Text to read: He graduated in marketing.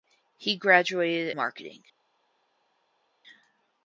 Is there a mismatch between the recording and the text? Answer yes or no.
yes